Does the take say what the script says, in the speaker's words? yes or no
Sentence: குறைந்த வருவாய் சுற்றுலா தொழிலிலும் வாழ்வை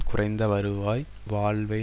no